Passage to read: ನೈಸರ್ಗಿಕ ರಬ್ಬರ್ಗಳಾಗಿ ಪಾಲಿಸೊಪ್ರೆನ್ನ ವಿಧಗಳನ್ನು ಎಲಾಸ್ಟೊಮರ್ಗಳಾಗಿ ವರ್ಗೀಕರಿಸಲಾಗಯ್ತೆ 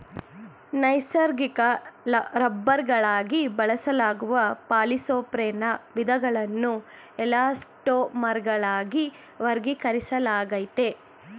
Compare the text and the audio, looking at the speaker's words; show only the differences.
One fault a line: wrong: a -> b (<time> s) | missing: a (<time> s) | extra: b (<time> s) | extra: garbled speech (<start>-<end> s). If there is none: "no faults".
extra: ಬಳಸಲಾಗುವ (3.6 s)